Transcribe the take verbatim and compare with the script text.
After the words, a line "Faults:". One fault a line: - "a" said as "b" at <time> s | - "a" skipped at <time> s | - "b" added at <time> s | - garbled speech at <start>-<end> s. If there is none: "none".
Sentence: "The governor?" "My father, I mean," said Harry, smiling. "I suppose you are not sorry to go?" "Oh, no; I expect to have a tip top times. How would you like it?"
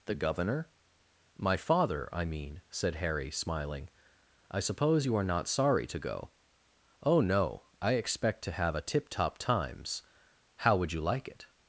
"The governor?" "My father, I mean," said Harry, smiling. "I suppose you are not sorry to go?" "Oh, no; I expect to have a tip top times. How would you like it?"
Faults:
none